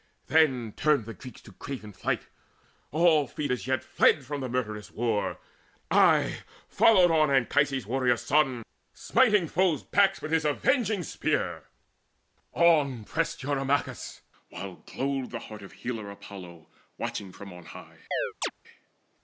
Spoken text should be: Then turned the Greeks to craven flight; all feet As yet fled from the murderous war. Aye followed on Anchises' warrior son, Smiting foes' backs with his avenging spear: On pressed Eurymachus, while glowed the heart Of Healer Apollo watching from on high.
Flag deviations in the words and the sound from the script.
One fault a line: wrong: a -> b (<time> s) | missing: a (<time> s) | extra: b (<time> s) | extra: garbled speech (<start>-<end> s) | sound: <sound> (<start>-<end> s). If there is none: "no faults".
sound: chirp (18.1-18.5 s)